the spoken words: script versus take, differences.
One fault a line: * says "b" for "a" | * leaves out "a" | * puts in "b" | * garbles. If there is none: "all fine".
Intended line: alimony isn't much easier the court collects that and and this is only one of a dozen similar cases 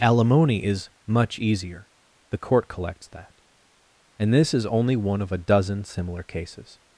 * says "is" for "isn't"
* leaves out "and"